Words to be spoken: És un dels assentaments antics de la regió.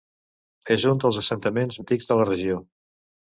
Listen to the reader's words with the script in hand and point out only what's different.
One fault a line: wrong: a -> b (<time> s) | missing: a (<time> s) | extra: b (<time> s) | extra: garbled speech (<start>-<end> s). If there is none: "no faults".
no faults